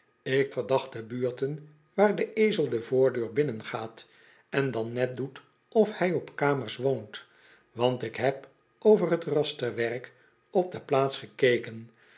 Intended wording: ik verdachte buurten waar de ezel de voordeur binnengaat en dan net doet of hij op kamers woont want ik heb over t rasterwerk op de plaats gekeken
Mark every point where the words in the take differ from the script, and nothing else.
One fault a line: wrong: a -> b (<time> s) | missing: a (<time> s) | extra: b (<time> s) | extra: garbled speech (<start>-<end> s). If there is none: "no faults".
no faults